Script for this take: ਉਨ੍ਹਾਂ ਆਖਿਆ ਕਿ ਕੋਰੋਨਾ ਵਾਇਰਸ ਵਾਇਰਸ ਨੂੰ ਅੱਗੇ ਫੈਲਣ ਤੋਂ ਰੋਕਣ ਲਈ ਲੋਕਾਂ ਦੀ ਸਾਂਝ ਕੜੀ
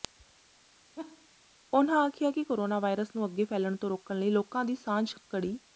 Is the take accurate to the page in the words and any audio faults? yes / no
no